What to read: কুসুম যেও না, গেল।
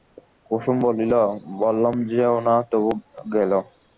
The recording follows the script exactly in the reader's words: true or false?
false